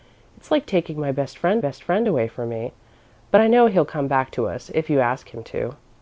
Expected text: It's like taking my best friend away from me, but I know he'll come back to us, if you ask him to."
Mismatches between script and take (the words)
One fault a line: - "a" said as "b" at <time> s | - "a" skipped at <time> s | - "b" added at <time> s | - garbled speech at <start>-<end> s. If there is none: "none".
- "best friend" added at 1.6 s